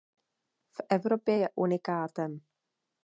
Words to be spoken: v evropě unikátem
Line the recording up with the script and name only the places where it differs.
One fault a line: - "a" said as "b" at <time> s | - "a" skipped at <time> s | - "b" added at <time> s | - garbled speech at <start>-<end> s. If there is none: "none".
- "je" added at 1.3 s